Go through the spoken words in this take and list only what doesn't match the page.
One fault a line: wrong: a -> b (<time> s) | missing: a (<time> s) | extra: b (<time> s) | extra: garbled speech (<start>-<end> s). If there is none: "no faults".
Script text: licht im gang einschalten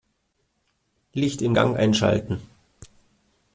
no faults